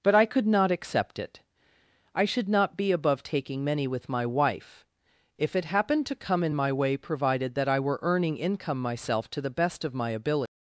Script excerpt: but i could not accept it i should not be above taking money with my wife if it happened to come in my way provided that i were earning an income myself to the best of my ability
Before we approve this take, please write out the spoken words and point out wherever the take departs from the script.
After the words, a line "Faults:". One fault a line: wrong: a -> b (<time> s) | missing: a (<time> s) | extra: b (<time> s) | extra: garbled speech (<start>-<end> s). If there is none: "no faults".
but i could not accept it i should not be above taking many with my wife if it happened to come in my way provided that i were earning income myself to the best of my ability
Faults:
wrong: money -> many (3.6 s)
missing: an (8.4 s)